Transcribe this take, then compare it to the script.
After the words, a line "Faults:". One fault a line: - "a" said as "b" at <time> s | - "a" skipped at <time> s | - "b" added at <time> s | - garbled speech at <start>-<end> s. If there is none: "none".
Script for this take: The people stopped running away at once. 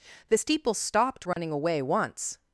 The steeple stopped running away once.
Faults:
- "people" said as "steeple" at 0.3 s
- "at" skipped at 1.8 s